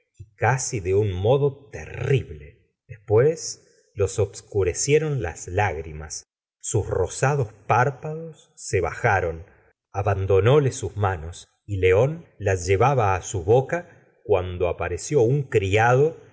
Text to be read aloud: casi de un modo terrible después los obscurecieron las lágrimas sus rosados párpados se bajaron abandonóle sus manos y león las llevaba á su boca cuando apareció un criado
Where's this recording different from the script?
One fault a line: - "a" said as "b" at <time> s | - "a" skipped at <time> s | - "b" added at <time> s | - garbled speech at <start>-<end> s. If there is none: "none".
none